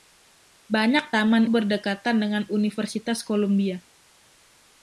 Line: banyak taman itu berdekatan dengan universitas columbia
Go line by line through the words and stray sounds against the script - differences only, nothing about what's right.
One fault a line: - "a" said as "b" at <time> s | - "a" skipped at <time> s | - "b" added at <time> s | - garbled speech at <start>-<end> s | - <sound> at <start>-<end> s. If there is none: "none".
- "itu" skipped at 1.5 s